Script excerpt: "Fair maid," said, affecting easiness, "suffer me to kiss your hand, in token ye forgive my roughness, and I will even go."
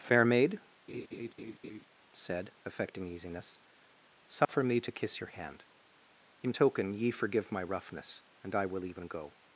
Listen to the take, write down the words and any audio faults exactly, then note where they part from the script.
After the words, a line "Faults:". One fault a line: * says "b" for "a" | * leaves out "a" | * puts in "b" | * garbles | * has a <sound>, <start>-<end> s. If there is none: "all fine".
"Fair maid," said, affecting easiness, "suffer me to kiss your hand, in token ye forgive my roughness, and I will even go."
Faults:
* has a laugh, 0.9-1.9 s
* has a dropout, 4.4-4.5 s